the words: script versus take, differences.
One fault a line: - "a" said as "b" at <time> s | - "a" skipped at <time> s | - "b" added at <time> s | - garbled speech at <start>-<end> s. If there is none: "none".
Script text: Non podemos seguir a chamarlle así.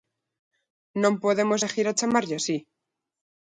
none